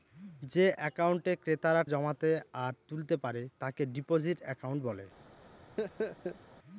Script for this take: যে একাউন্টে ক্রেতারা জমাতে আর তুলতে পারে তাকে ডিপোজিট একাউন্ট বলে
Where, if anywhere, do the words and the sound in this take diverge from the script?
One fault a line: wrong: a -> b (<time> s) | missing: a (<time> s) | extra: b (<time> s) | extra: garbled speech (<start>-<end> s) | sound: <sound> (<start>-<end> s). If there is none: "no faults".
sound: laugh (5.8-6.4 s)